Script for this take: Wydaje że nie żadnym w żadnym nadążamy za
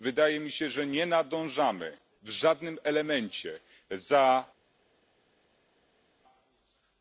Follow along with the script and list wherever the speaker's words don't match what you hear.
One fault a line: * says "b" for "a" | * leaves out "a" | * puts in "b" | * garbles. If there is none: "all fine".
* puts in "mi się"
* says "nadążamy" for "żadnym"
* says "elemencie" for "nadążamy"